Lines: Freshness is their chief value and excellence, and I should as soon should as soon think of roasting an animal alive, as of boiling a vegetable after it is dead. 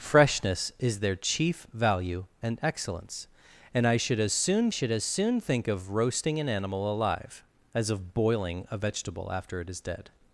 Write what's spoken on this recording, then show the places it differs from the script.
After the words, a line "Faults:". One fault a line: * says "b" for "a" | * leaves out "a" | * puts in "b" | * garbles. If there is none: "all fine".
Freshness is their chief value and excellence, and I should as soon should as soon think of roasting an animal alive, as of boiling a vegetable after it is dead.
Faults:
all fine